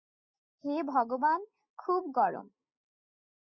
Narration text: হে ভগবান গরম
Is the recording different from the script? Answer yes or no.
yes